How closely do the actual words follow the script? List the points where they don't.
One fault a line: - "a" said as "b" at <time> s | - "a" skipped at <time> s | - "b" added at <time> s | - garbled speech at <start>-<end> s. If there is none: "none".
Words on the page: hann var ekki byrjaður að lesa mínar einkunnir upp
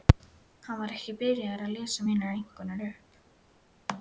none